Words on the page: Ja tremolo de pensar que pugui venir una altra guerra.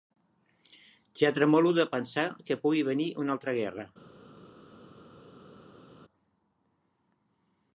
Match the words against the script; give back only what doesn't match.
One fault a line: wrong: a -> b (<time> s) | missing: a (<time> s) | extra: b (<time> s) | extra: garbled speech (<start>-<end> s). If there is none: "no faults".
no faults